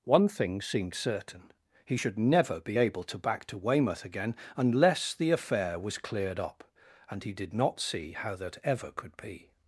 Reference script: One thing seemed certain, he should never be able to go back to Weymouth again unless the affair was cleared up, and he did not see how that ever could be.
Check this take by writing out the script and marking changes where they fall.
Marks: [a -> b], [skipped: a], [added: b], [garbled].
One thing seemed certain, he should never be able to [skipped: go] back to Weymouth again unless the affair was cleared up, and he did not see how that ever could be.